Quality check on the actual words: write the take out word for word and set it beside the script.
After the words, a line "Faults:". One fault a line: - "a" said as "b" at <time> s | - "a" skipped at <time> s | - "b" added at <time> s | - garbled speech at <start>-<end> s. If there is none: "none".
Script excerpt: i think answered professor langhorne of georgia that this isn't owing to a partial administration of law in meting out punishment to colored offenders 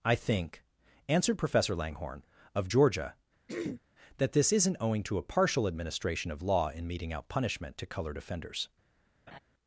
i think answered professor langhorne of georgia that this isn't owing to a partial administration of law in meting out punishment to colored offenders
Faults:
none